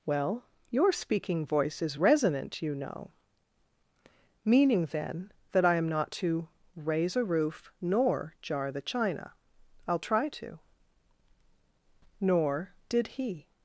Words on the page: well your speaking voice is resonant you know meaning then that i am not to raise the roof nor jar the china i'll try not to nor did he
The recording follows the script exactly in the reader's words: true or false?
false